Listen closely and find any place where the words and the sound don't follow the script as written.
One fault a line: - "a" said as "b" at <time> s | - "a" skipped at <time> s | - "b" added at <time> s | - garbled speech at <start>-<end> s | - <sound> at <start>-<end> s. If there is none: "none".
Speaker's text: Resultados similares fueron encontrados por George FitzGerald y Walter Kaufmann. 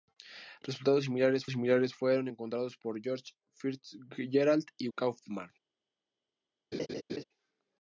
- "similares" added at 1.5 s
- "Walter" skipped at 4.9 s
- laugh at 6.7-7.2 s